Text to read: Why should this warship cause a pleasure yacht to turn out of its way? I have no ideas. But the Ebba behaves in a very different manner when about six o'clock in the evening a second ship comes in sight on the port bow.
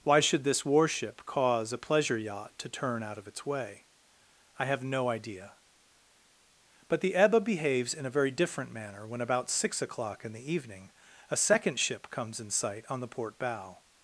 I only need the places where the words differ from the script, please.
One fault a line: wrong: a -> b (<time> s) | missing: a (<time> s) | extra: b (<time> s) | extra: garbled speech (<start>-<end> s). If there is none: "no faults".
wrong: ideas -> idea (5.1 s)